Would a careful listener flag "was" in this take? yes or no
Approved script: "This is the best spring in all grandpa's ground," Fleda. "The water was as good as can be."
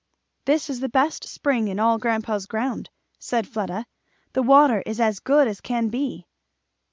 yes